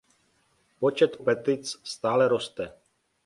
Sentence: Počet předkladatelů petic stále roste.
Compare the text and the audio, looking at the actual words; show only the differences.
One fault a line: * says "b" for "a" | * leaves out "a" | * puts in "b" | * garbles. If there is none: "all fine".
* leaves out "předkladatelů"